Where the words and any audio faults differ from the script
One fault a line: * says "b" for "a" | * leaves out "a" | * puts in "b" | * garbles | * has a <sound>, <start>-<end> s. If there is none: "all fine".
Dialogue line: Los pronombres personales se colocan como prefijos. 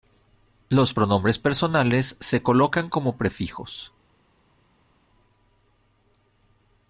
all fine